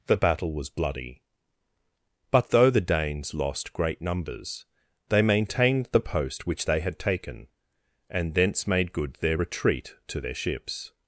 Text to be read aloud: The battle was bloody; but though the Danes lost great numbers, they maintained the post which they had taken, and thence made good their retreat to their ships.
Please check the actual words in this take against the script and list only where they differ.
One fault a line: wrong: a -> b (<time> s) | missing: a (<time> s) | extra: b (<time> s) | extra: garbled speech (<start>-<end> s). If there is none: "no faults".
no faults